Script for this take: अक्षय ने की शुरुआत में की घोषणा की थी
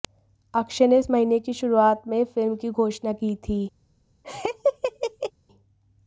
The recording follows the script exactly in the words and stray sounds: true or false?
false